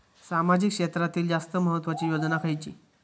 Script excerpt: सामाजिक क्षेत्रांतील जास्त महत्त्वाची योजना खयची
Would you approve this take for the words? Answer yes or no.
yes